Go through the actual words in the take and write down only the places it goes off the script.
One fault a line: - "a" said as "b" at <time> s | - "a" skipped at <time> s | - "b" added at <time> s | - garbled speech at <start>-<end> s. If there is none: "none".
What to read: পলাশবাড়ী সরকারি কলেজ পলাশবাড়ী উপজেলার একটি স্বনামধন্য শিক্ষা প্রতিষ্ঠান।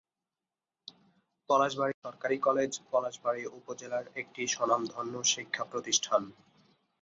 none